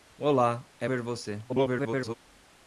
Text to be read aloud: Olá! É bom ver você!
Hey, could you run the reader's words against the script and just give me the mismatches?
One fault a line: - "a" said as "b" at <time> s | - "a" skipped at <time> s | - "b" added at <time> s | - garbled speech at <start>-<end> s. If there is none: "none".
- "bom" skipped at 0.9 s
- garbled speech at 1.5-2.1 s